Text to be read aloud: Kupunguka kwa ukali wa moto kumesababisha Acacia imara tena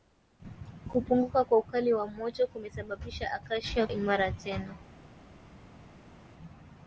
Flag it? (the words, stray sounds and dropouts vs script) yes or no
no